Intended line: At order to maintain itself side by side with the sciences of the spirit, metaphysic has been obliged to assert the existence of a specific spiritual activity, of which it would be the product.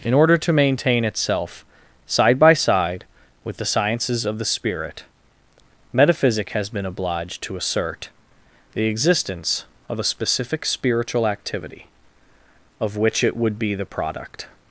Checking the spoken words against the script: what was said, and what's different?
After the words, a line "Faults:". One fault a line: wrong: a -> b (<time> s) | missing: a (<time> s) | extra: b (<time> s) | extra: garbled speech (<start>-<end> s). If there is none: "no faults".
In order to maintain itself side by side with the sciences of the spirit, metaphysic has been obliged to assert the existence of a specific spiritual activity, of which it would be the product.
Faults:
wrong: At -> In (0.0 s)